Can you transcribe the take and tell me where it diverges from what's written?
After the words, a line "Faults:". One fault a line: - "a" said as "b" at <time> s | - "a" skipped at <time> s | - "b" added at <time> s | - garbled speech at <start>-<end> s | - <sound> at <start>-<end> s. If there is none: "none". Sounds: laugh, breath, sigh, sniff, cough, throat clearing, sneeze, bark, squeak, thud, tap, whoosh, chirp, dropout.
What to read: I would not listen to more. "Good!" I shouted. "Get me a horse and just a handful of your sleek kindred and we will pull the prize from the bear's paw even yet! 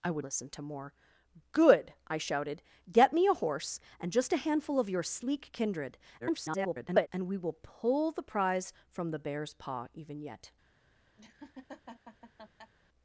I would listen to more. "Good!" I shouted. "Get me a horse and just a handful of your sleek kindred [garbled] and we will pull the prize from the bear's paw even yet!
Faults:
- "not" skipped at 0.2 s
- garbled speech at 6.2-7.1 s
- laugh at 11.2-12.7 s